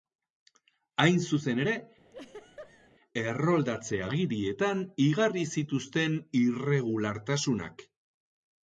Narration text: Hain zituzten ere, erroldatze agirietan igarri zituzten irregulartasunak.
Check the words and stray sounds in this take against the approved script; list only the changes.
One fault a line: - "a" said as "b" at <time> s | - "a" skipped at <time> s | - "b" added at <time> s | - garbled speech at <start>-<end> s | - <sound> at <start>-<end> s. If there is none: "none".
- "zituzten" said as "zuzen" at 1.2 s
- laugh at 2.1-2.9 s